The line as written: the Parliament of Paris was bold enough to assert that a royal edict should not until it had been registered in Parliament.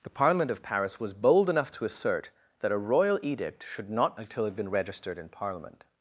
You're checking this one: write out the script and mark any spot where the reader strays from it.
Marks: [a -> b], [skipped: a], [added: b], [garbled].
the Parliament of Paris was bold enough to assert that a royal edict should not until it had been registered in Parliament.